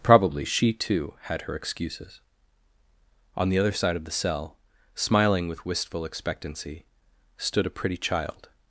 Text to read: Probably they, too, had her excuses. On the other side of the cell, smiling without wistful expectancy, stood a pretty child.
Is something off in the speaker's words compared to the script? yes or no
yes